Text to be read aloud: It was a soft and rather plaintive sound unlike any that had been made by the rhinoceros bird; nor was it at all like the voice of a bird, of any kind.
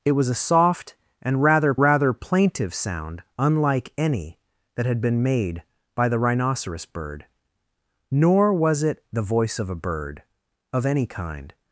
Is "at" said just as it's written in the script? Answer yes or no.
no